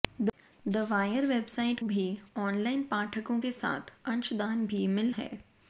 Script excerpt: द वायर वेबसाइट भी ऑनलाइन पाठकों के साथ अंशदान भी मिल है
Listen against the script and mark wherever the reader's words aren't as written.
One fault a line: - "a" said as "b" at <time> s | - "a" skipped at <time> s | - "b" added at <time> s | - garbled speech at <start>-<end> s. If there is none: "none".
none